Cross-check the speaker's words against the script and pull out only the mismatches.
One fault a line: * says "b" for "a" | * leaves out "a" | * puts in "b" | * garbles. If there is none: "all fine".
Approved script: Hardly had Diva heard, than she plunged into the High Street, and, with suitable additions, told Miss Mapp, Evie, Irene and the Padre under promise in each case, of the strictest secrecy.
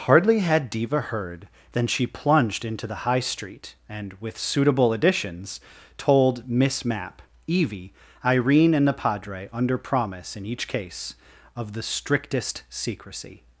all fine